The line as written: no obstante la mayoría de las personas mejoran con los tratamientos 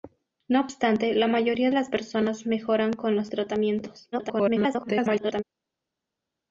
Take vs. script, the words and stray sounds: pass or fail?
fail